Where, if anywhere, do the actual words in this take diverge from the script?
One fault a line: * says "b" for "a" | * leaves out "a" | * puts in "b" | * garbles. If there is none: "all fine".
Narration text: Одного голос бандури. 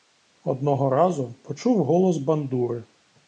* puts in "разу почув"